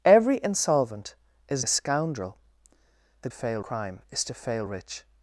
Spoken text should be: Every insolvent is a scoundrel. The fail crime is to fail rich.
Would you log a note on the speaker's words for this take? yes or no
no